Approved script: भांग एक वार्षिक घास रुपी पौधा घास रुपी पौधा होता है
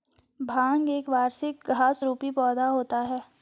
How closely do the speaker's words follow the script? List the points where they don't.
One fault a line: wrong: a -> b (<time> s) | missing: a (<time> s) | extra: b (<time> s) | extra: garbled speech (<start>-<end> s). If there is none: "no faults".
missing: घास रुपी पौधा (2.7 s)